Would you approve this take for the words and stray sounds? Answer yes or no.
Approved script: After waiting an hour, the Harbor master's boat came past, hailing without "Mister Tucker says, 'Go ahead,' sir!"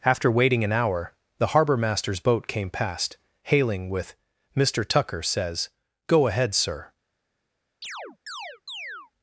no